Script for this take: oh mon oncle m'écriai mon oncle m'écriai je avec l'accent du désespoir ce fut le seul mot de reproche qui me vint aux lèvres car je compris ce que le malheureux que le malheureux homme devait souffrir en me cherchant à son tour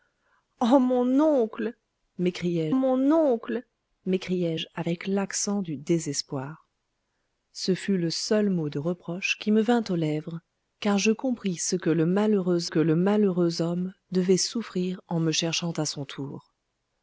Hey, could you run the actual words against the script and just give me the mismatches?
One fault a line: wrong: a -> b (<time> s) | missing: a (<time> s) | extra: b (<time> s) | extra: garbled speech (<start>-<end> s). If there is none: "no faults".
no faults